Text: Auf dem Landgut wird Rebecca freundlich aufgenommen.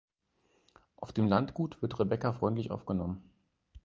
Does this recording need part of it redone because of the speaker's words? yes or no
no